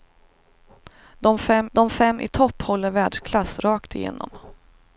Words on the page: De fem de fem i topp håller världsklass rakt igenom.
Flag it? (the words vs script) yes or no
no